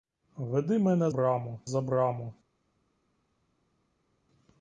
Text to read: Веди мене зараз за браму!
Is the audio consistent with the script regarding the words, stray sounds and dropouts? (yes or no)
no